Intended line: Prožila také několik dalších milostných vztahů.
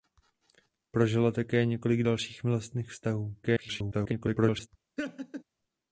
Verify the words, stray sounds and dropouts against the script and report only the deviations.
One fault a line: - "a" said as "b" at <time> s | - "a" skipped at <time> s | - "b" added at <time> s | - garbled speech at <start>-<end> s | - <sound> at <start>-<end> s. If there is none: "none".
- garbled speech at 3.4-4.7 s
- laugh at 5.0-5.4 s